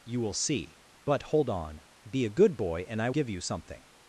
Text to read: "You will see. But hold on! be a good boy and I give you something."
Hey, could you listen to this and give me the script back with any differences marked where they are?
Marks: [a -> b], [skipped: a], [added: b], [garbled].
"You will see. But hold on! be a good boy and I give you something."